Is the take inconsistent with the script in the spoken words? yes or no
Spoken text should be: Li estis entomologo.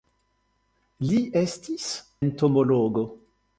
no